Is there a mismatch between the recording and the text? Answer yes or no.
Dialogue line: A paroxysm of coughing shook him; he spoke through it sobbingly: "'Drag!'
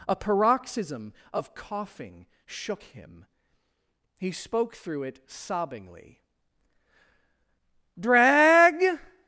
no